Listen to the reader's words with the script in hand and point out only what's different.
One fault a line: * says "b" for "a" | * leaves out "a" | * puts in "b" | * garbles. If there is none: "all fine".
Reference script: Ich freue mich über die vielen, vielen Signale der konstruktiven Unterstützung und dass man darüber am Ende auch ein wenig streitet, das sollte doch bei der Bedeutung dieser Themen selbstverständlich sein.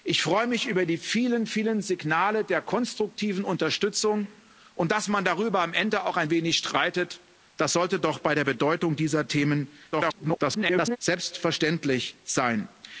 * garbles